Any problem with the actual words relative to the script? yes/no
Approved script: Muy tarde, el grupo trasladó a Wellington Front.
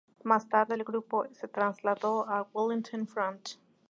yes